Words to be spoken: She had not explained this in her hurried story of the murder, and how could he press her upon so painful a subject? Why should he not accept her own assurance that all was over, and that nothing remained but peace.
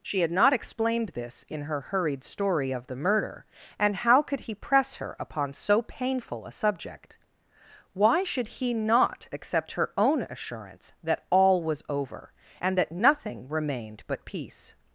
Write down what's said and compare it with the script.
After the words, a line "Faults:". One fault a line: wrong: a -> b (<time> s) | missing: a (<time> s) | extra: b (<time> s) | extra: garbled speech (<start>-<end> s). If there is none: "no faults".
She had not explained this in her hurried story of the murder, and how could he press her upon so painful a subject? Why should he not accept her own assurance that all was over, and that nothing remained but peace.
Faults:
no faults